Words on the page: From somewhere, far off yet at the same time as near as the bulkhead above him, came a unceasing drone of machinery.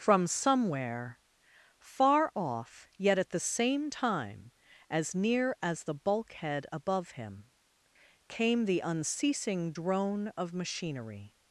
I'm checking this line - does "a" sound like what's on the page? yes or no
no